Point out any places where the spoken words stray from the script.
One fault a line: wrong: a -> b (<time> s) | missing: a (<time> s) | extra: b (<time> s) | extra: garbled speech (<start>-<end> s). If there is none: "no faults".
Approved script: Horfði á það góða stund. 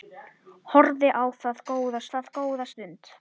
extra: það góða (2.1 s)